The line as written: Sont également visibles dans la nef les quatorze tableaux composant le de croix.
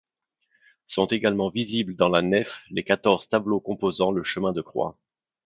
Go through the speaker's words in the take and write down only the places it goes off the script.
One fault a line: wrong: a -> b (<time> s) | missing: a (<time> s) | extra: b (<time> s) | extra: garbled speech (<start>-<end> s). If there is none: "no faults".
extra: chemin (4.2 s)